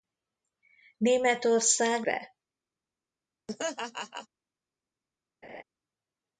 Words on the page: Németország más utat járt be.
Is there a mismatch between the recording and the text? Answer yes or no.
yes